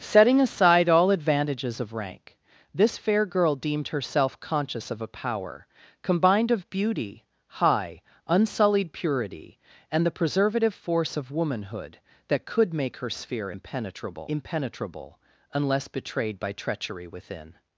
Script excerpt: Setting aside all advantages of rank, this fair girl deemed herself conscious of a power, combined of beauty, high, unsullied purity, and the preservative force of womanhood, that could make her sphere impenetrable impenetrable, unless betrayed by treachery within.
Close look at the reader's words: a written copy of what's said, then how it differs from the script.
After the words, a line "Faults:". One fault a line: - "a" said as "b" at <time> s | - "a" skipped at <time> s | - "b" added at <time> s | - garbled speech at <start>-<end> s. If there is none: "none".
Setting aside all advantages of rank, this fair girl deemed herself conscious of a power, combined of beauty, high, unsullied purity, and the preservative force of womanhood, that could make her sphere impenetrable impenetrable, unless betrayed by treachery within.
Faults:
none